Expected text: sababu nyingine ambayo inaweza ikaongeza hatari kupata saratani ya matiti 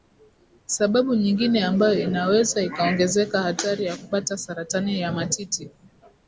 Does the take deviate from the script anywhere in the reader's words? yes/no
yes